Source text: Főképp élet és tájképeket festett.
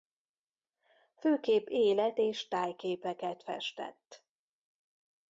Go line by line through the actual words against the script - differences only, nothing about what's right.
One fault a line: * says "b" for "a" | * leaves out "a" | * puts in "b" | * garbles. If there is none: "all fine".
all fine